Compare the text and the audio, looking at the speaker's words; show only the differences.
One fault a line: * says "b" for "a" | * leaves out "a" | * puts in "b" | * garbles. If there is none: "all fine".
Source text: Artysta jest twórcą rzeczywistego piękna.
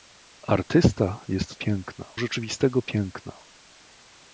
* says "piękna" for "twórcą"